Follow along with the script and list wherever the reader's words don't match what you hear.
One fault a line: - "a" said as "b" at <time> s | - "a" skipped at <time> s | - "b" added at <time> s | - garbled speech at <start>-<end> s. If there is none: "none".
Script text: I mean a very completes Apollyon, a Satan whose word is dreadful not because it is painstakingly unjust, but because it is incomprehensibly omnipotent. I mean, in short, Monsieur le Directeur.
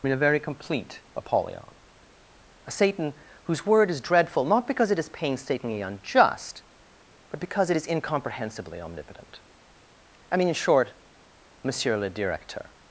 - "completes" said as "complete" at 0.4 s